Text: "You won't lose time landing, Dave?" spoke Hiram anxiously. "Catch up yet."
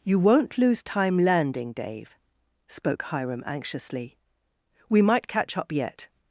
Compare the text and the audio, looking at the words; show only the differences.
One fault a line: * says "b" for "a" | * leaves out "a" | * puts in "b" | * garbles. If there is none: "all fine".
* puts in "We might"